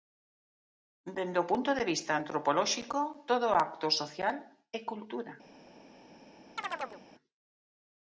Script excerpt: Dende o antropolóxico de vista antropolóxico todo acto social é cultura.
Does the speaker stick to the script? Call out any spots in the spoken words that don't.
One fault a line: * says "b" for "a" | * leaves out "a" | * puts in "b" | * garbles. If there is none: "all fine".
* says "punto" for "antropolóxico"